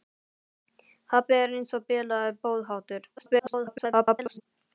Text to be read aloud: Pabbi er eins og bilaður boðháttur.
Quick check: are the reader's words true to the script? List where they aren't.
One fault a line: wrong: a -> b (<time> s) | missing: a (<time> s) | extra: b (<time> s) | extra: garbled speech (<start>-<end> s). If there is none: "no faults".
extra: garbled speech (3.2-4.4 s)